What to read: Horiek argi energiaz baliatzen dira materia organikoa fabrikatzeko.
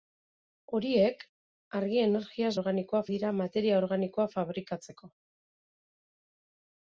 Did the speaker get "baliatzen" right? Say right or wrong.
wrong